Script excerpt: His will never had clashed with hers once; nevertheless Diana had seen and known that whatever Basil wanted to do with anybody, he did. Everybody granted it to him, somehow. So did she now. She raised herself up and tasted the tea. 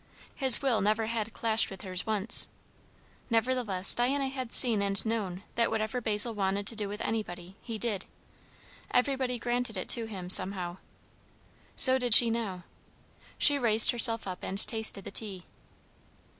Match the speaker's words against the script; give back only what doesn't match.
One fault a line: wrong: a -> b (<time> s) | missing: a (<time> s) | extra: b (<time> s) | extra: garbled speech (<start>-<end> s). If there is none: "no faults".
no faults